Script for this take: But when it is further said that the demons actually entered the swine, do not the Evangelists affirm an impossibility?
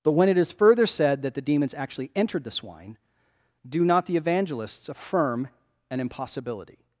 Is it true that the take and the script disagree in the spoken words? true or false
false